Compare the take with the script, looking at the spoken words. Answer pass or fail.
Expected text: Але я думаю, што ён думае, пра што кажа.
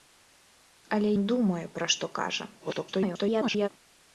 fail